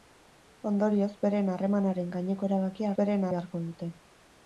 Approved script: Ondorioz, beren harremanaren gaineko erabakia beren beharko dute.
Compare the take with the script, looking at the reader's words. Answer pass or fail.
pass